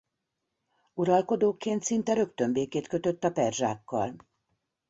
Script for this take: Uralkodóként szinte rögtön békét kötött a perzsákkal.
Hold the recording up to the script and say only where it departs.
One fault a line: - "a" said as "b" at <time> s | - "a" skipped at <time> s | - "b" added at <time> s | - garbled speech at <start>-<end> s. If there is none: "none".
none